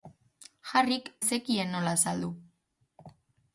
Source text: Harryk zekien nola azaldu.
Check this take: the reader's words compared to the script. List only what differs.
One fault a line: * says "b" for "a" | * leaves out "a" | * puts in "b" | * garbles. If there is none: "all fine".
all fine